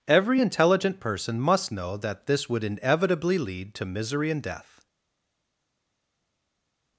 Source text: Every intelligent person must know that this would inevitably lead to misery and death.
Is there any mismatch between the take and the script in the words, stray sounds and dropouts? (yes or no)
no